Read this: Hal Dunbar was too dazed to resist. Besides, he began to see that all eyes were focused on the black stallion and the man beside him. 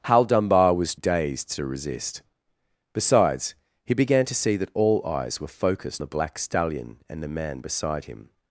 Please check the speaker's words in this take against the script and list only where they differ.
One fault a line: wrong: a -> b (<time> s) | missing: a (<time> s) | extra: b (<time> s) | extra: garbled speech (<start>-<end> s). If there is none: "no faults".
missing: too (0.9 s)
missing: on (6.0 s)